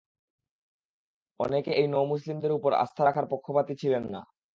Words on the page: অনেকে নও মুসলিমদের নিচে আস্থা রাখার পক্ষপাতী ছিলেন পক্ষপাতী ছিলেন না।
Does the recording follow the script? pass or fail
fail